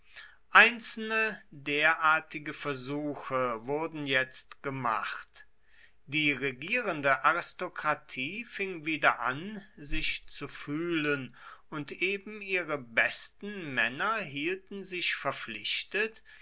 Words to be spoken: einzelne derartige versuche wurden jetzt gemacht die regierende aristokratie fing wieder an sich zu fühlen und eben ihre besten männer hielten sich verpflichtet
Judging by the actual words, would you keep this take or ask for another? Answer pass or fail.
pass